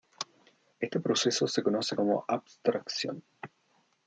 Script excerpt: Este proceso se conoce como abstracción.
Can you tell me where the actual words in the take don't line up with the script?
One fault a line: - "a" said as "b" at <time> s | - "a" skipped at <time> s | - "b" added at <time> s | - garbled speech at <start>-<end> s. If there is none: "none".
none